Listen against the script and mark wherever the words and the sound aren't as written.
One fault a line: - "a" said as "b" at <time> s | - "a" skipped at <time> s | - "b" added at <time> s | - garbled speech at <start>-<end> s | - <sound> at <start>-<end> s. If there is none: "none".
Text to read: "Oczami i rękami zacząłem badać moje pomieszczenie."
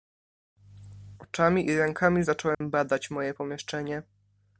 - dropout at 2.5-2.6 s